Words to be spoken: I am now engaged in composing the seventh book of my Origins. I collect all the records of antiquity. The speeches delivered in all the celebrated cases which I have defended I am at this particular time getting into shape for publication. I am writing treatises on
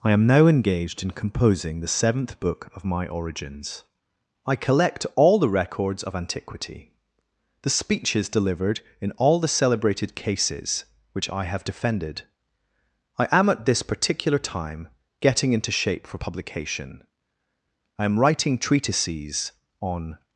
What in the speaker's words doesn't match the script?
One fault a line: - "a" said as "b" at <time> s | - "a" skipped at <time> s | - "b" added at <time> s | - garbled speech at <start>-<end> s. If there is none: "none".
none